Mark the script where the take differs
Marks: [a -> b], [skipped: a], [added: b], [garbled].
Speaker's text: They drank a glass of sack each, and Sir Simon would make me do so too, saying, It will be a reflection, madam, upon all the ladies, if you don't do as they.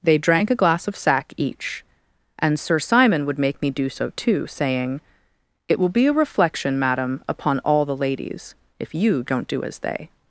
They drank a glass of sack each, and Sir Simon would make me do so too, saying, It will be a reflection, madam, upon all the ladies, if you don't do as they.